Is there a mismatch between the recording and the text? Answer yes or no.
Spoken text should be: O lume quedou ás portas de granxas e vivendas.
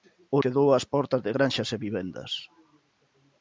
yes